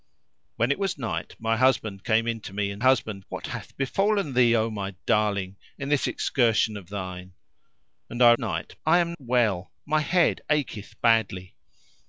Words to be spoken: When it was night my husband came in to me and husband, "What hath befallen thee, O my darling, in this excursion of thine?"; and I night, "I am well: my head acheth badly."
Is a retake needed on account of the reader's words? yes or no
no